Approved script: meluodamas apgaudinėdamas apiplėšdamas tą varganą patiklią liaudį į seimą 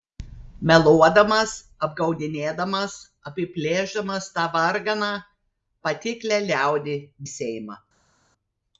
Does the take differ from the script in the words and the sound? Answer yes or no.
no